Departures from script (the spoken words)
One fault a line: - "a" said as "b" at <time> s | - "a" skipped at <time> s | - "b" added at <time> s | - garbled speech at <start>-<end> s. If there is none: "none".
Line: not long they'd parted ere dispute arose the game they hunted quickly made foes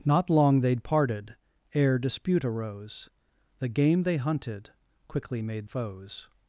none